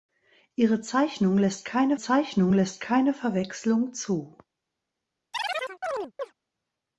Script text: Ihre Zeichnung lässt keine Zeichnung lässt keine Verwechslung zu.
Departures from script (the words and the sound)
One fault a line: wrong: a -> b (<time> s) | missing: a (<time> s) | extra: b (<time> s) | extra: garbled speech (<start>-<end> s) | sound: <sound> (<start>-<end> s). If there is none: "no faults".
sound: chirp (5.3-6.3 s)